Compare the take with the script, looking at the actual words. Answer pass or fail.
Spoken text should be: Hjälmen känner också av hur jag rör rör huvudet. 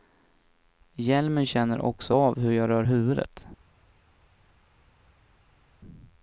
fail